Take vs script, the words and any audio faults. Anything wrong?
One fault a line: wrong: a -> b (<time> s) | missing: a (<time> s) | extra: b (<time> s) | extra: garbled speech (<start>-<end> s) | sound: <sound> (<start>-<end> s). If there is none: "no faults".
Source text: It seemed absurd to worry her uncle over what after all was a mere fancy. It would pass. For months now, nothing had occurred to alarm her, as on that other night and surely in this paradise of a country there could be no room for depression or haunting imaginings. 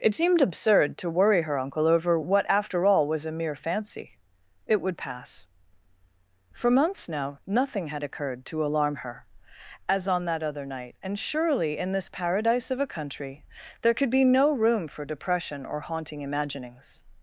no faults